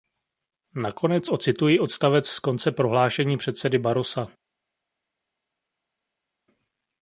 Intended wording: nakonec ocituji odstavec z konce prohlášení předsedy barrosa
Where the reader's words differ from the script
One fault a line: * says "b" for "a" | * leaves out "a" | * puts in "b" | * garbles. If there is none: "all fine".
all fine